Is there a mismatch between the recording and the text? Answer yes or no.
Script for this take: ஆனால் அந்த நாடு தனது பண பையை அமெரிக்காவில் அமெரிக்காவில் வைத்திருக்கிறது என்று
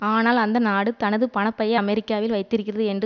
yes